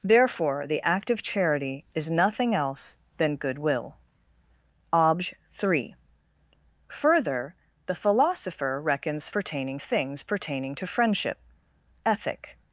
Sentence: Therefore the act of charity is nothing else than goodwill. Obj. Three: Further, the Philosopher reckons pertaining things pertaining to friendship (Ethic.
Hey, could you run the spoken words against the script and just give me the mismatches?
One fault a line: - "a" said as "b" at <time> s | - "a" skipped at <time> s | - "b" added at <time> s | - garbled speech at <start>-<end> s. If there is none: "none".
none